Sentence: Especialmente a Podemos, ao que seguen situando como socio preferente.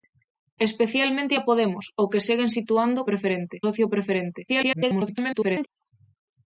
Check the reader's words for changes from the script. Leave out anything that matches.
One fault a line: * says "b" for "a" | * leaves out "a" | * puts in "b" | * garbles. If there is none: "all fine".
* says "preferente" for "como"
* garbles